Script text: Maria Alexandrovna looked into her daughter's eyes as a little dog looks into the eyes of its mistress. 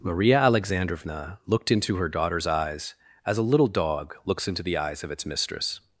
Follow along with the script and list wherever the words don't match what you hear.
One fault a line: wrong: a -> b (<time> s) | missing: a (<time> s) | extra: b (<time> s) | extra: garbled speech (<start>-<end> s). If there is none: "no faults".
no faults